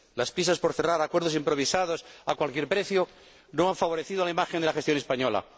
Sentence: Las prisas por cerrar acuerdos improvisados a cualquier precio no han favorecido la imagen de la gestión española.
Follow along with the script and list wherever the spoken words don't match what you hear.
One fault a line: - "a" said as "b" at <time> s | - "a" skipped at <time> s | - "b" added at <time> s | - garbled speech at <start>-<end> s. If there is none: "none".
none